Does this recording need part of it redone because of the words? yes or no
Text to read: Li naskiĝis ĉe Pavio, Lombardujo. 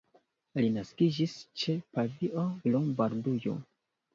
no